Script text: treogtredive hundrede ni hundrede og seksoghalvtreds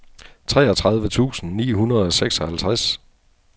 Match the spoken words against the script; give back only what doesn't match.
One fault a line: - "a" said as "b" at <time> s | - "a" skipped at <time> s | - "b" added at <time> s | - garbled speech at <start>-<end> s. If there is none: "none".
- "hundrede" said as "tusind" at 1.1 s